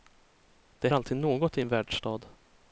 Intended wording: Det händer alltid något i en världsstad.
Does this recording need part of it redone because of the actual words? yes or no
yes